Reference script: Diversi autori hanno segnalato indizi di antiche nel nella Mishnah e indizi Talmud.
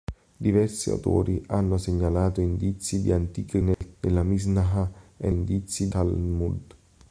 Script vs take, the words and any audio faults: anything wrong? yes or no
yes